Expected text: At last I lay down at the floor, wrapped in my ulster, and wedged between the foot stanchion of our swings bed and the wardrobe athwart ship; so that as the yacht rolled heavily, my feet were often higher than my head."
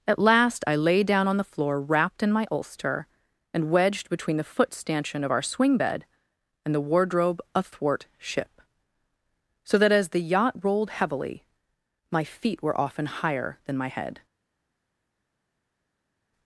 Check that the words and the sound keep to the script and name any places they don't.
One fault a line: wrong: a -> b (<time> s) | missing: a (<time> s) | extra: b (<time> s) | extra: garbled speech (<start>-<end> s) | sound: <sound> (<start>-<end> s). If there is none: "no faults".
wrong: at -> on (1.3 s)
wrong: swings -> swing (5.4 s)